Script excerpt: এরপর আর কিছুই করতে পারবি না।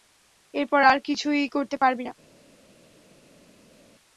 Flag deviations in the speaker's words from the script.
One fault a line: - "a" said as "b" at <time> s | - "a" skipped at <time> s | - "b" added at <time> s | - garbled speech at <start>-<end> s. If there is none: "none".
none